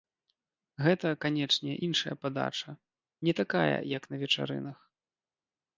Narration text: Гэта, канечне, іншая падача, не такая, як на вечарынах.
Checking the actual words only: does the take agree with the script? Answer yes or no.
yes